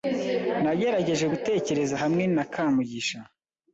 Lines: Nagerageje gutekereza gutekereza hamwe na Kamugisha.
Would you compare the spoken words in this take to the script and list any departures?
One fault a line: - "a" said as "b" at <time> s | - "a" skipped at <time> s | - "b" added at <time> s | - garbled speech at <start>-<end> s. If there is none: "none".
- "gutekereza" skipped at 1.9 s